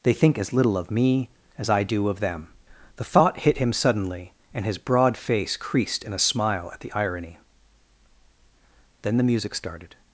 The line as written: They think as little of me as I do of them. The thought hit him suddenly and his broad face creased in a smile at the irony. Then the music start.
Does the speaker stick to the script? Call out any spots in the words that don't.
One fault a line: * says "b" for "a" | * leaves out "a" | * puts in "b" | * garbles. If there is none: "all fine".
* says "started" for "start"